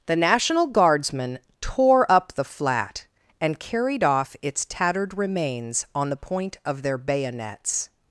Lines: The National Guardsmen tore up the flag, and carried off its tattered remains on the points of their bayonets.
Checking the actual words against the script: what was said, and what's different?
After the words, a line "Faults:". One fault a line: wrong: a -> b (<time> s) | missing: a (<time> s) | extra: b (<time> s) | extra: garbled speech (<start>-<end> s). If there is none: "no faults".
The National Guardsmen tore up the flat, and carried off its tattered remains on the point of their bayonets.
Faults:
wrong: flag -> flat (2.4 s)
wrong: points -> point (6.2 s)